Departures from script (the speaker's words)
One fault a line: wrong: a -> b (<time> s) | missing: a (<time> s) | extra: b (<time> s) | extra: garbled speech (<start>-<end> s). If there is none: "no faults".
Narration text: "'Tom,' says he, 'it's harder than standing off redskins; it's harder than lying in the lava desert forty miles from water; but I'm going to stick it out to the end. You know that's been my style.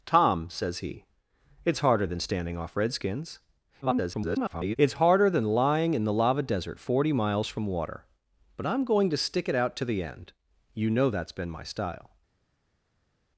extra: garbled speech (3.8-4.8 s)